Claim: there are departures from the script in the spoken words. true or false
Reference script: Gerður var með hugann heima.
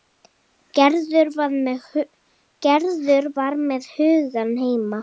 false